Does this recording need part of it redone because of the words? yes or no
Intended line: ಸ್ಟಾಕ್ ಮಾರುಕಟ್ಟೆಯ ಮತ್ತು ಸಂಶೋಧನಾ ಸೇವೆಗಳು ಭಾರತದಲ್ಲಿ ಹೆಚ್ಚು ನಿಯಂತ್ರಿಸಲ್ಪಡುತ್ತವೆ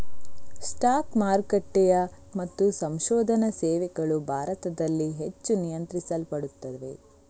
no